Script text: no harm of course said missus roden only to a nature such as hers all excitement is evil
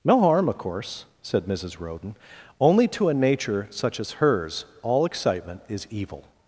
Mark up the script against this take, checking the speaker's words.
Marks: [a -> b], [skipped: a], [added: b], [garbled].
no harm of course said missus roden only to a nature such as hers all excitement is evil